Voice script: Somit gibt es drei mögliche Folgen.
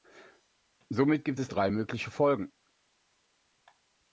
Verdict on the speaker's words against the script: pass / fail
pass